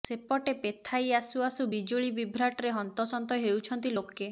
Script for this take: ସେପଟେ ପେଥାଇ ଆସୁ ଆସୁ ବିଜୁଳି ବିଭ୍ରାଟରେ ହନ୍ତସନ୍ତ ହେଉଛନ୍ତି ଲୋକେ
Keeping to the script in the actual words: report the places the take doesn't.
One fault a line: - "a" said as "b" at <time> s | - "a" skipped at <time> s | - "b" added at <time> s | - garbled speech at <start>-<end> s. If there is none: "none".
none